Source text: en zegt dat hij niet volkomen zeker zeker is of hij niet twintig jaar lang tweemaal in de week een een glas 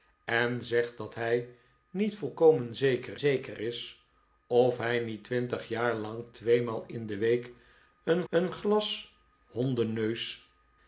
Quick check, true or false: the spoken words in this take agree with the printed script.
true